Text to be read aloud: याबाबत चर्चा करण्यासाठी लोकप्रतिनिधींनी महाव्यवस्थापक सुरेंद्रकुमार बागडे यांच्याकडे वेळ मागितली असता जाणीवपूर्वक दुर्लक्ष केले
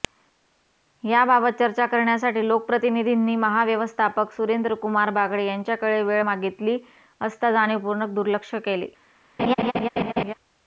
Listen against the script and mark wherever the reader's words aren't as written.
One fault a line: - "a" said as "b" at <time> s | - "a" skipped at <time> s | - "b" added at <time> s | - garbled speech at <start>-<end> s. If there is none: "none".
none